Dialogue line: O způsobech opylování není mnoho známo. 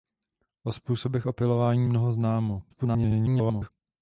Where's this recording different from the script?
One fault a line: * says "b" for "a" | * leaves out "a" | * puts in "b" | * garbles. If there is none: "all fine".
* leaves out "není"
* garbles